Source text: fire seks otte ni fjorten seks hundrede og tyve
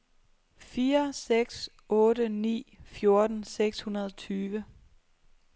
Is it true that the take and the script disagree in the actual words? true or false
false